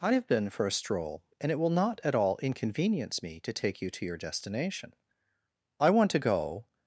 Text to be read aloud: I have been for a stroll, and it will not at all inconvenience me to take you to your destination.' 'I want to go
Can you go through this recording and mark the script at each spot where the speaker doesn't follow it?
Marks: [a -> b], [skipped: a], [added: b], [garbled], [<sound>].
I have been for a stroll, and it will not at all inconvenience me to take you to your destination.' 'I want to go